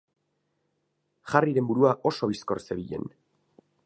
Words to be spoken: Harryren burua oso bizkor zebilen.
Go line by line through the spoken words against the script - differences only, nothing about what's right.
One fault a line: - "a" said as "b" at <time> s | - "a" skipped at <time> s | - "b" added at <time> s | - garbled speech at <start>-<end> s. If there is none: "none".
none